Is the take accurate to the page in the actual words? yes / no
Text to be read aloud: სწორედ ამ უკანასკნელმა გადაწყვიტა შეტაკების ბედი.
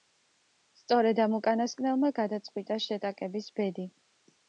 yes